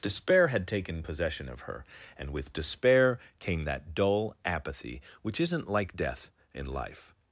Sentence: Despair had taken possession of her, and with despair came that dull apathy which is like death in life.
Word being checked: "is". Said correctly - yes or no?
no